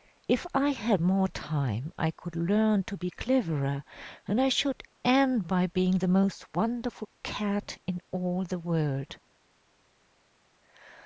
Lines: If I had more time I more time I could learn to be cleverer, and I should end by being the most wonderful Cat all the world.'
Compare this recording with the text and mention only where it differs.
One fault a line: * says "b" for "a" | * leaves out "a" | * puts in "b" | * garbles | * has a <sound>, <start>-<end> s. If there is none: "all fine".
* leaves out "more time I"
* puts in "in"